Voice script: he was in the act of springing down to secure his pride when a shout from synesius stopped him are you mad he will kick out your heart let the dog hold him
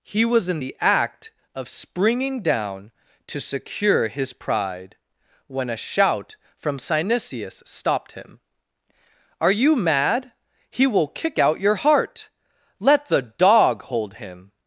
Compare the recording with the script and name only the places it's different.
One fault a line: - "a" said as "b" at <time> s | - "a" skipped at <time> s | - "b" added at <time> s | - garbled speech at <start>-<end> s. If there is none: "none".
none